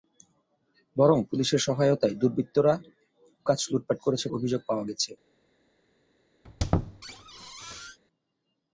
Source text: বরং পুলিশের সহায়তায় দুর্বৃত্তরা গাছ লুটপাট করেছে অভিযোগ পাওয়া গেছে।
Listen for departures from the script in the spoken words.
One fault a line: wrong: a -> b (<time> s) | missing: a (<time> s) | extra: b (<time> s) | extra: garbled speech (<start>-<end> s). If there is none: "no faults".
no faults